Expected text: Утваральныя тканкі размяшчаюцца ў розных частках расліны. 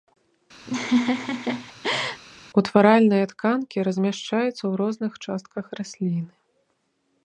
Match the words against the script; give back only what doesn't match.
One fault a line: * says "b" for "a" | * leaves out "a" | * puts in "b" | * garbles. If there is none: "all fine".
all fine